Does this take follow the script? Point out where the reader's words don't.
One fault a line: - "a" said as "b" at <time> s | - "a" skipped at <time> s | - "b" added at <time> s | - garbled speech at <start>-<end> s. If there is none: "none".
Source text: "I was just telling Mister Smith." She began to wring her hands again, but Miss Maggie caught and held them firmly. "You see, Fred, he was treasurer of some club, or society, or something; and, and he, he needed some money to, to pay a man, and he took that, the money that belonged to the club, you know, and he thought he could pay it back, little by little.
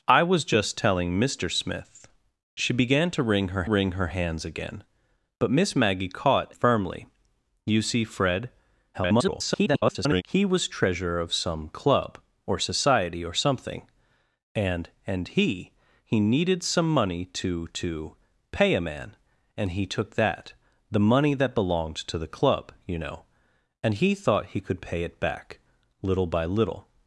- "wring her" added at 3.7 s
- "and held them" skipped at 6.5 s
- garbled speech at 8.9-10.2 s